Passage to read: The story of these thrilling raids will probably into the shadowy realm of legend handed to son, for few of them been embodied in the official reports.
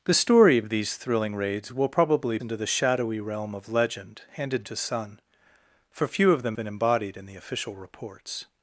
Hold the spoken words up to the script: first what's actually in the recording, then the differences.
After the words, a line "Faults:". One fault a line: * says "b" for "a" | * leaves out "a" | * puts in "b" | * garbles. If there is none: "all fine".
The story of these thrilling raids will probably into the shadowy realm of legend handed to son, for few of them been embodied in the official reports.
Faults:
all fine